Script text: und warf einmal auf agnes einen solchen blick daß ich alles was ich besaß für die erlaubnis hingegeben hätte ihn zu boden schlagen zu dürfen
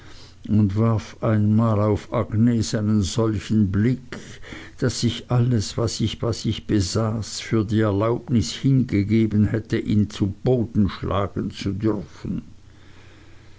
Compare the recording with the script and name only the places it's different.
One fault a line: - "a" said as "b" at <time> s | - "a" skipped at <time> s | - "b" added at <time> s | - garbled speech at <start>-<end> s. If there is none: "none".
- "was ich" added at 6.2 s